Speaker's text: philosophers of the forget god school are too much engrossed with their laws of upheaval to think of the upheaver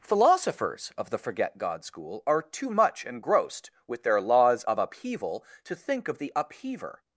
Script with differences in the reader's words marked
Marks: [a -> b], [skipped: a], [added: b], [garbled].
philosophers of the forget god school are too much engrossed with their laws of upheaval to think of the upheaver